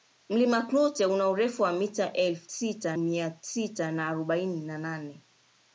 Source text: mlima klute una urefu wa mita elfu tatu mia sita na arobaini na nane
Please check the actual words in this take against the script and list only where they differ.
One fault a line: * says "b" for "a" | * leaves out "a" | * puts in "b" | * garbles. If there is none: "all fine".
* says "sita" for "tatu"